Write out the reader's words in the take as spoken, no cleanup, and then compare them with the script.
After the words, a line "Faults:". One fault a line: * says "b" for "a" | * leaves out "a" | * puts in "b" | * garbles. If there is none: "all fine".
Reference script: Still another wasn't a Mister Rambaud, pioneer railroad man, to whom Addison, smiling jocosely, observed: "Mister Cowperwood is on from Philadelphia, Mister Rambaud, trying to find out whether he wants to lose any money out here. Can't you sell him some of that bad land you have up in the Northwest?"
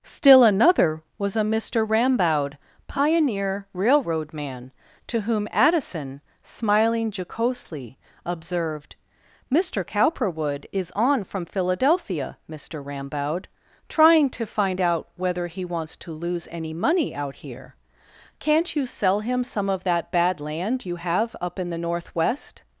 Still another was a Mister Rambaud, pioneer railroad man, to whom Addison, smiling jocosely, observed: "Mister Cowperwood is on from Philadelphia, Mister Rambaud, trying to find out whether he wants to lose any money out here. Can't you sell him some of that bad land you have up in the Northwest?"
Faults:
* says "was" for "wasn't"